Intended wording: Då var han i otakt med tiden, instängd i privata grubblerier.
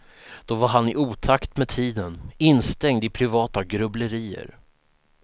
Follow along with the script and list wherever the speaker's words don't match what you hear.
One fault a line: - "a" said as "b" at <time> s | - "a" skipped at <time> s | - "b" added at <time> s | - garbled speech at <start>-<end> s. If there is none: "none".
none